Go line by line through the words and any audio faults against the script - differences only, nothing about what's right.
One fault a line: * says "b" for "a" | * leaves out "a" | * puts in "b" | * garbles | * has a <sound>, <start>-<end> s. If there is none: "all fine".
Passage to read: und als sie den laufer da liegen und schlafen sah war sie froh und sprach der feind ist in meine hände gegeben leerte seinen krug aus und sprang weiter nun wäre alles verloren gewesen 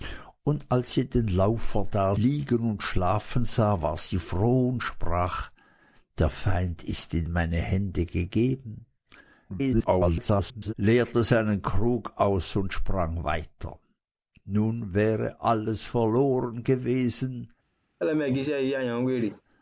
* garbles
* has a laugh, 18.0-19.4 s